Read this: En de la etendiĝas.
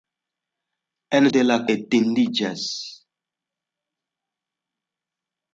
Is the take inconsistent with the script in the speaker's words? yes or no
no